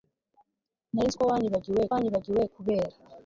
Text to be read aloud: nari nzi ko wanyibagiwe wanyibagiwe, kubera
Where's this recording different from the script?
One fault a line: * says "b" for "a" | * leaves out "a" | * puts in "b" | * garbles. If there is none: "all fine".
all fine